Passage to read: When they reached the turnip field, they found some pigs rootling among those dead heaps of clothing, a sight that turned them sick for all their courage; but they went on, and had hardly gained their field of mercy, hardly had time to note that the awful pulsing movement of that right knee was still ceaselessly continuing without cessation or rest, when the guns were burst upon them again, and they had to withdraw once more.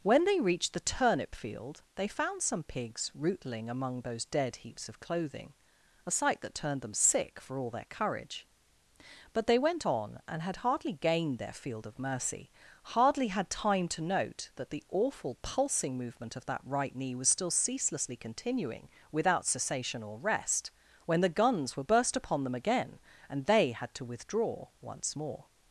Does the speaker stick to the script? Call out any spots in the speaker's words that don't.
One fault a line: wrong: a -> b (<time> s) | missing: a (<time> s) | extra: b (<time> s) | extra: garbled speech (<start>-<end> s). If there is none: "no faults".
no faults